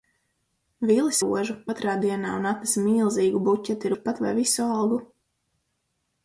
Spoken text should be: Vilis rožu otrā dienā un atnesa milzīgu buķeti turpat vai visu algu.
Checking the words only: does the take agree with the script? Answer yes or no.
yes